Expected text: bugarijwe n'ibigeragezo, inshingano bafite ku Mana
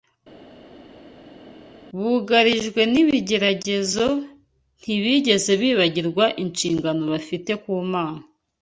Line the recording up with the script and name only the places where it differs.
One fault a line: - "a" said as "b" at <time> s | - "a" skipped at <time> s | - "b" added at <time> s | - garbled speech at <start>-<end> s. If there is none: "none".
- "ntibigeze bibagirwa" added at 4.8 s